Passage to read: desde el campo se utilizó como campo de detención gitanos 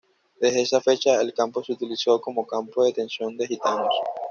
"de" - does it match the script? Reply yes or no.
yes